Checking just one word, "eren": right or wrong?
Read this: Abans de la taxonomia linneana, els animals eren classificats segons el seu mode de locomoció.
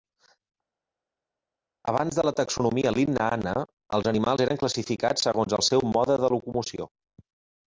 right